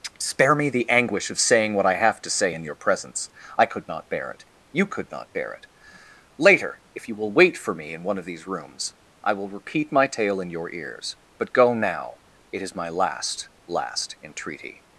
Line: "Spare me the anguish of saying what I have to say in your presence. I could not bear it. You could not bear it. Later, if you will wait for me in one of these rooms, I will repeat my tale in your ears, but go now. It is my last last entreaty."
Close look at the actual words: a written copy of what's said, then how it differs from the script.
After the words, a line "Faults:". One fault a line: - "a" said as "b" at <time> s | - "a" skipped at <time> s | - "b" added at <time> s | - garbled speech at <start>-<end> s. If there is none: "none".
"Spare me the anguish of saying what I have to say in your presence. I could not bear it. You could not bear it. Later, if you will wait for me in one of these rooms, I will repeat my tale in your ears, but go now. It is my last last entreaty."
Faults:
none